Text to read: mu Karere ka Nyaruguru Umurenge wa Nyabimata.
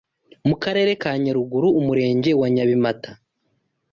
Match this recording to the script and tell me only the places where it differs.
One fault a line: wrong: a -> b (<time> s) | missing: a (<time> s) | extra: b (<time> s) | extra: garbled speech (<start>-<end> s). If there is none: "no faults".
no faults